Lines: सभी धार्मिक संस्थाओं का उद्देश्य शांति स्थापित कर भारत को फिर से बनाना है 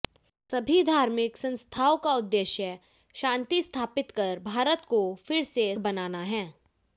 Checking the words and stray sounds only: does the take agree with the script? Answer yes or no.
yes